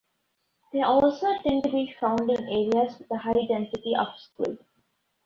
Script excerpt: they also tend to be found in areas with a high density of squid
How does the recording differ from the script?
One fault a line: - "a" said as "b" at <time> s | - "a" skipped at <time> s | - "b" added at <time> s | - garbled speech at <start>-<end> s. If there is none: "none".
none